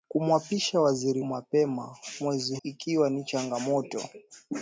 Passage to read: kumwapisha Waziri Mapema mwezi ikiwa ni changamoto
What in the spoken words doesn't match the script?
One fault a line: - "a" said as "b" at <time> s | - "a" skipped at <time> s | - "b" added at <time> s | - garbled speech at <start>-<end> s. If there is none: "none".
none